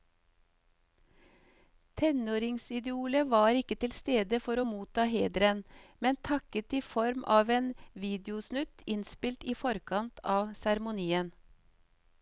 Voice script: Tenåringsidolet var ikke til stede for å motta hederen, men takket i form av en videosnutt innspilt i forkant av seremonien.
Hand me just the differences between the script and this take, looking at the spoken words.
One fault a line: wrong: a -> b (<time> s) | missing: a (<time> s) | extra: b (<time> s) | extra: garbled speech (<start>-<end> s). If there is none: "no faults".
no faults